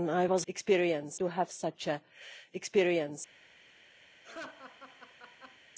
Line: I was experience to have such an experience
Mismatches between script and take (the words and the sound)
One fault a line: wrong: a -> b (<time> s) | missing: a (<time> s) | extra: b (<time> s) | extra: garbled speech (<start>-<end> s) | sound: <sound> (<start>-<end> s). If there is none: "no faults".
sound: laugh (4.2-5.6 s)